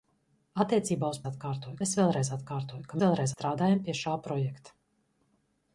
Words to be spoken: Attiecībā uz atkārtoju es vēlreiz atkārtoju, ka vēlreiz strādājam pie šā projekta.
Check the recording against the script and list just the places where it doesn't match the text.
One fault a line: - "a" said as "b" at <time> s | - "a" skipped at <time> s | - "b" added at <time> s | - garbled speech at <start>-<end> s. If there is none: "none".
none